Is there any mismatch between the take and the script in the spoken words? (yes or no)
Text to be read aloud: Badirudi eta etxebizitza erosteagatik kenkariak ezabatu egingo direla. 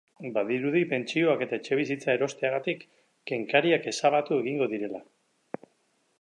yes